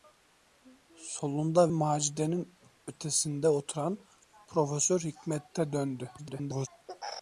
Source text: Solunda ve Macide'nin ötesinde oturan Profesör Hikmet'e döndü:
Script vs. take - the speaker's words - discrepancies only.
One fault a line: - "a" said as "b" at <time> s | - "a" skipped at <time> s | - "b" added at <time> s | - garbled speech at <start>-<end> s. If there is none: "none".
- "ve" skipped at 1.7 s
- garbled speech at 6.2-6.7 s